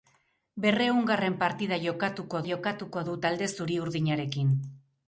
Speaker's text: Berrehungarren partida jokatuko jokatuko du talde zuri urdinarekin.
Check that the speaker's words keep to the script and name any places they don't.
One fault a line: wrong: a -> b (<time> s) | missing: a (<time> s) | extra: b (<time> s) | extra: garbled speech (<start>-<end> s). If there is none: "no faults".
no faults